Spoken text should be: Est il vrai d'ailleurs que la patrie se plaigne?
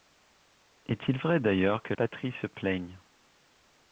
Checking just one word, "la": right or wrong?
wrong